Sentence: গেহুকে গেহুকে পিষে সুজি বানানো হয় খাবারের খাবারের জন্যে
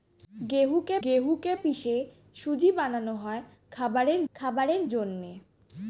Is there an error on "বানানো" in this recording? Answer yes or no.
no